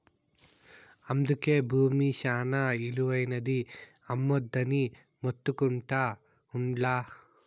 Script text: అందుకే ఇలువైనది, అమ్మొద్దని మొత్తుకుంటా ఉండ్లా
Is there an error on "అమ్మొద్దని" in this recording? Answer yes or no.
no